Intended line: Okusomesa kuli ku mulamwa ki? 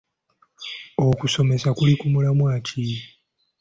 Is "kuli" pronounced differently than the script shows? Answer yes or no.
no